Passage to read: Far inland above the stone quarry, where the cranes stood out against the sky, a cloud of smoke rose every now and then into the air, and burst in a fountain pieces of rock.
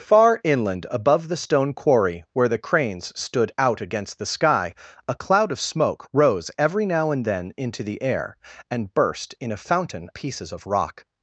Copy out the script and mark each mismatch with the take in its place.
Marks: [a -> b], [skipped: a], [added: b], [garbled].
Far inland above the stone quarry, where the cranes stood out against the sky, a cloud of smoke rose every now and then into the air, and burst in a fountain pieces of rock.